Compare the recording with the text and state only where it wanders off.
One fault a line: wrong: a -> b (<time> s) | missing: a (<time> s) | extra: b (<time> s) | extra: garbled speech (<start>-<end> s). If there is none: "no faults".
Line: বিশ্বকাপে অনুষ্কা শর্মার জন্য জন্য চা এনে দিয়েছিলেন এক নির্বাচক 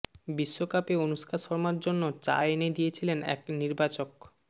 missing: জন্য (2.0 s)